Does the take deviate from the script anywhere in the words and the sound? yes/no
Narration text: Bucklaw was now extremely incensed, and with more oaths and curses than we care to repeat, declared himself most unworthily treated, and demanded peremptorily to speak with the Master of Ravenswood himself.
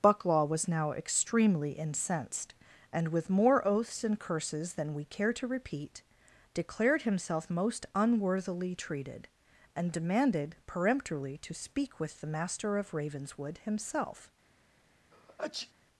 yes